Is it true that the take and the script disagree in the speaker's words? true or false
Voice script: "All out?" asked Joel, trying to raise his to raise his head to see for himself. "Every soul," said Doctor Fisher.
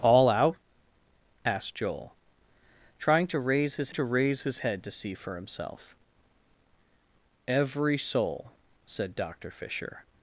false